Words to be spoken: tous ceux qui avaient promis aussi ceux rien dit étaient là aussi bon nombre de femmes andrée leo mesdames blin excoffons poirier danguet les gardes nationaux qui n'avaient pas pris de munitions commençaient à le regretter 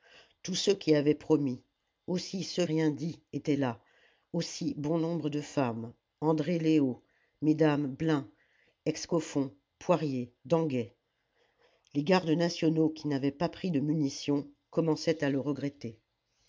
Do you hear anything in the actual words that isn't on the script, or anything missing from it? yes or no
no